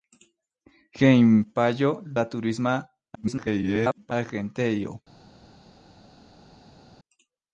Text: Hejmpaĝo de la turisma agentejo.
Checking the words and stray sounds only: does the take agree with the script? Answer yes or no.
no